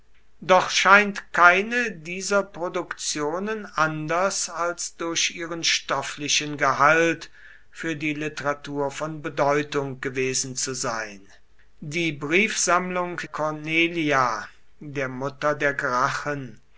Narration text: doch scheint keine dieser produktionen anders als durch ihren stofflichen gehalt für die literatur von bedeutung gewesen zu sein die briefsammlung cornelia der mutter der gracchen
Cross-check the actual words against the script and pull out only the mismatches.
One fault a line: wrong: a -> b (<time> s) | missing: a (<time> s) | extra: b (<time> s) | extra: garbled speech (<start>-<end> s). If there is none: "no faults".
no faults